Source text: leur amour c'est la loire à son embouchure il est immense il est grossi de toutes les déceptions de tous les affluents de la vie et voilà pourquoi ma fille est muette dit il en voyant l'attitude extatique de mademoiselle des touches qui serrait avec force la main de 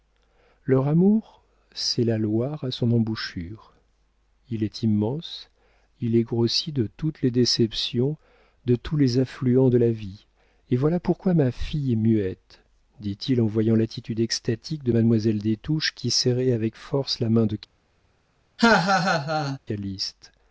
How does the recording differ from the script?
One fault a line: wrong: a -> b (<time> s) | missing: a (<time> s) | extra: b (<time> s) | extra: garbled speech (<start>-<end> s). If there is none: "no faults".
no faults